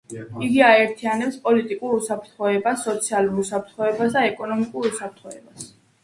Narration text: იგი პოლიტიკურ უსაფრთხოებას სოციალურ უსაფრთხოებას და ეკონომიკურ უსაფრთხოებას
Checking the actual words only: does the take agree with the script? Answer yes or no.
no